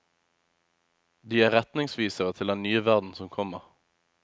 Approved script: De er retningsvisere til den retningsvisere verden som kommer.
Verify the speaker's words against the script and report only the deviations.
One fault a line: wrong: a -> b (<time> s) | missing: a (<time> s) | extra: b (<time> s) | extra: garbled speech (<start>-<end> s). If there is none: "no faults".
wrong: retningsvisere -> nye (2.6 s)